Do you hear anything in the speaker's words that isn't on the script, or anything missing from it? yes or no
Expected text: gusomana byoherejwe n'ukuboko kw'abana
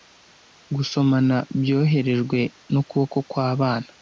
no